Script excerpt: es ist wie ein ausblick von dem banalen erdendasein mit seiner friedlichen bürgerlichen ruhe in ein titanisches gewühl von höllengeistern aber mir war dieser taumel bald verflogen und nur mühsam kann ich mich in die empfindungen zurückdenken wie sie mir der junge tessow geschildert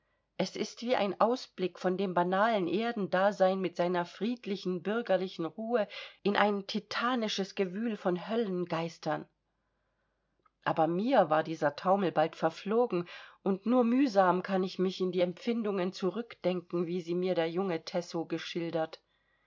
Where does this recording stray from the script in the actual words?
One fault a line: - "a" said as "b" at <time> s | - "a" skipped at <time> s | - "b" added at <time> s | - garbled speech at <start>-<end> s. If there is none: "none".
none